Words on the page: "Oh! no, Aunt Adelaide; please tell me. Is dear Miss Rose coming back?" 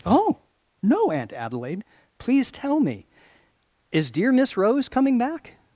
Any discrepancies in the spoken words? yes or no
no